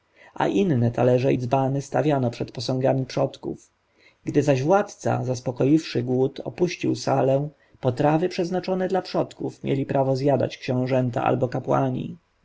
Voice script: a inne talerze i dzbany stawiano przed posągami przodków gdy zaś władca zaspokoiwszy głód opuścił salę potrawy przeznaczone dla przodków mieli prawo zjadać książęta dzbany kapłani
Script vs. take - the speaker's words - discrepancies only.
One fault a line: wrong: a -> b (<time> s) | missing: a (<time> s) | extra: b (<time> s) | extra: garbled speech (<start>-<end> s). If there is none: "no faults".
wrong: dzbany -> albo (11.2 s)